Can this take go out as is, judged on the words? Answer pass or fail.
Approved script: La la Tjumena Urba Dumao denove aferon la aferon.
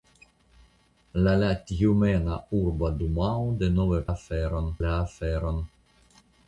pass